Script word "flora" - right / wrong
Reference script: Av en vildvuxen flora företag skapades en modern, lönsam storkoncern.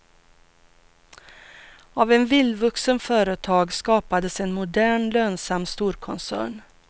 wrong